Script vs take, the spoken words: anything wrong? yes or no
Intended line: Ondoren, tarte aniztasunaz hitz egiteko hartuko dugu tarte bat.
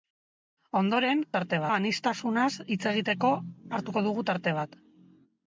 no